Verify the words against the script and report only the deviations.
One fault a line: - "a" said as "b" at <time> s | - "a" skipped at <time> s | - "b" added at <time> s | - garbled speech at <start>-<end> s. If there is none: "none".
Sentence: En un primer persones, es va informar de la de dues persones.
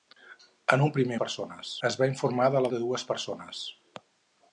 none